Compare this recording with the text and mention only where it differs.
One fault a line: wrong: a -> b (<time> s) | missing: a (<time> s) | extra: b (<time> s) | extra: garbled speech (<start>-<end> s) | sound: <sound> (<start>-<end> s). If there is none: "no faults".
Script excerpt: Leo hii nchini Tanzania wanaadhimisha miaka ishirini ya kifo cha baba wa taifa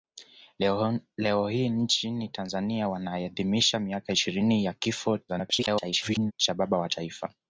extra: garbled speech (5.3-6.3 s)